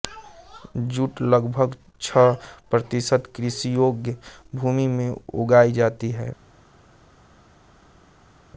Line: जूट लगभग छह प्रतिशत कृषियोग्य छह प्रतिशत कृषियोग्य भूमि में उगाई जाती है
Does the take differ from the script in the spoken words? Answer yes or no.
yes